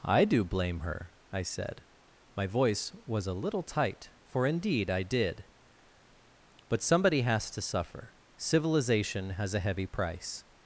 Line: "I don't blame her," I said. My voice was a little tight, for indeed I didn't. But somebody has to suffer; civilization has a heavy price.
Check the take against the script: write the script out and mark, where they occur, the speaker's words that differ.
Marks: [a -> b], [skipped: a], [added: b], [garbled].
"I [don't -> do] blame her," I said. My voice was a little tight, for indeed I [didn't. -> did] But somebody has to suffer; civilization has a heavy price.